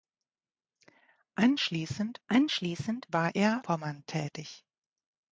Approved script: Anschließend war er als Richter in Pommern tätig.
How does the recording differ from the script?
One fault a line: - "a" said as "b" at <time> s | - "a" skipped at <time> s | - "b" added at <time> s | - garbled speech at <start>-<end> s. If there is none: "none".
- "anschließend" added at 2.3 s
- "als Richter in" skipped at 3.7 s